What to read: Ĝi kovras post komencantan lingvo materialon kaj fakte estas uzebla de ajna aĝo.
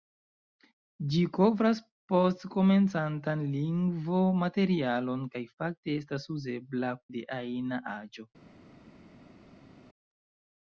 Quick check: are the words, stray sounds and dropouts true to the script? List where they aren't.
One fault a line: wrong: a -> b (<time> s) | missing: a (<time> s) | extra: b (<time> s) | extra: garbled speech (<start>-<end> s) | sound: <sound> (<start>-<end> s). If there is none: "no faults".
no faults